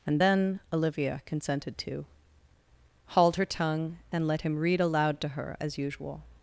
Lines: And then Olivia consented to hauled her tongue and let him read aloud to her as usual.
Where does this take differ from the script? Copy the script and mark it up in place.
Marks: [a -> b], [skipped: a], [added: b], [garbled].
And then Olivia consented to hauled her tongue and let him read aloud to her as usual.